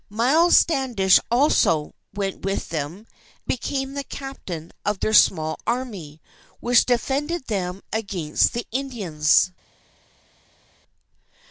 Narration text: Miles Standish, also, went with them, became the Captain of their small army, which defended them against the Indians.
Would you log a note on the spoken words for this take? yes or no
no